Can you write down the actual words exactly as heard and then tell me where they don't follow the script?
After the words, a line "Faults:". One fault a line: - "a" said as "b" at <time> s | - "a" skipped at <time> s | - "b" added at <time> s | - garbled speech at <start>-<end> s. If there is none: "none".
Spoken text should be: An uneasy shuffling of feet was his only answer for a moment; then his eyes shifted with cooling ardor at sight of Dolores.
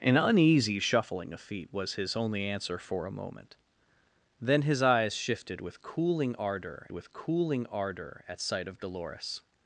An uneasy shuffling of feet was his only answer for a moment; then his eyes shifted with cooling ardor with cooling ardor at sight of Dolores.
Faults:
- "with cooling ardor" added at 6.9 s